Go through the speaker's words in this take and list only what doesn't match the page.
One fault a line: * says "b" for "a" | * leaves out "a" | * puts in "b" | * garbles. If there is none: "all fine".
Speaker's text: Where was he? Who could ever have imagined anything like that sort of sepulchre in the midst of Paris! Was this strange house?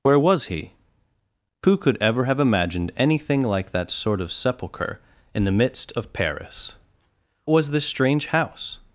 all fine